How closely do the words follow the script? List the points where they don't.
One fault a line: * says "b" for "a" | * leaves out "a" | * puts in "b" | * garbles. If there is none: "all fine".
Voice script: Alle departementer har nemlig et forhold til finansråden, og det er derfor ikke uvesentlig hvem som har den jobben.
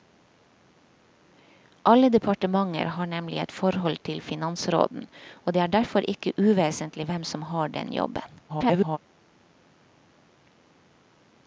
* garbles